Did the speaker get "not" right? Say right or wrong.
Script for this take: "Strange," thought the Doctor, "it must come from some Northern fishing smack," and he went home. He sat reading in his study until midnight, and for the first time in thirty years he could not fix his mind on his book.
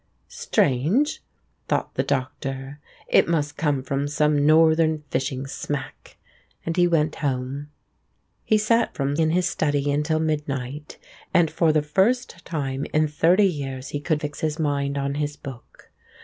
wrong